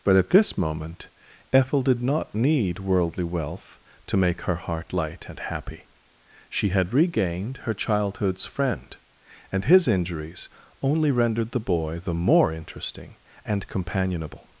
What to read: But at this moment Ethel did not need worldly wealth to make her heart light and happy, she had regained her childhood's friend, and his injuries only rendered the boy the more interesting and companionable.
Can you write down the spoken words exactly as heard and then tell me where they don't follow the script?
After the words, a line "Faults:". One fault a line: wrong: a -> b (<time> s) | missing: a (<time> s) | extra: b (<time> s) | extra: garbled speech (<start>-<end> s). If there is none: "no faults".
But at this moment Ethel did not need worldly wealth to make her heart light and happy, she had regained her childhood's friend, and his injuries only rendered the boy the more interesting and companionable.
Faults:
no faults